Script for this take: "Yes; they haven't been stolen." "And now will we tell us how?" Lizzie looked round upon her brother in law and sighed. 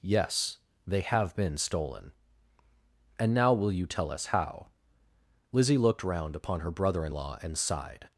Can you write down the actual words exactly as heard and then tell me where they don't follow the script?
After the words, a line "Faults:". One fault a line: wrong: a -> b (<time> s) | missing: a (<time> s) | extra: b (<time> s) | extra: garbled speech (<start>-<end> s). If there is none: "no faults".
"Yes; they have been stolen." "And now will you tell us how?" Lizzie looked round upon her brother in law and sighed.
Faults:
wrong: haven't -> have (1.0 s)
wrong: we -> you (3.7 s)